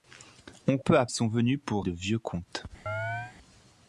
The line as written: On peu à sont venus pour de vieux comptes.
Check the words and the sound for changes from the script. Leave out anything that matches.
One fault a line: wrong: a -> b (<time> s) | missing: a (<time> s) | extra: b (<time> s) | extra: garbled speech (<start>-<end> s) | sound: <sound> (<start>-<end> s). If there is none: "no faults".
sound: chirp (2.9-3.4 s)